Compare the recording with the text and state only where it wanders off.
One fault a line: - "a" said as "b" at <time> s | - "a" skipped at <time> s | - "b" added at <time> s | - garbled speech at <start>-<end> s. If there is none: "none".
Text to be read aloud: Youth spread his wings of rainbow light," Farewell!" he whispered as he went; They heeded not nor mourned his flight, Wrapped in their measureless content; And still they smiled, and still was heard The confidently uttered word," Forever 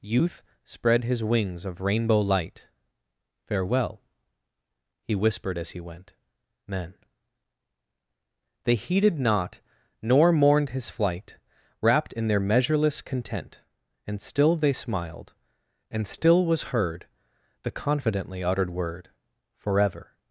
- "men" added at 6.7 s